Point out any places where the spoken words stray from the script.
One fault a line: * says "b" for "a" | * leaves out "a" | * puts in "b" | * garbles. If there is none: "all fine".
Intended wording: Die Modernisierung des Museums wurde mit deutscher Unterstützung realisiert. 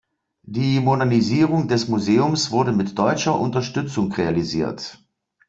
all fine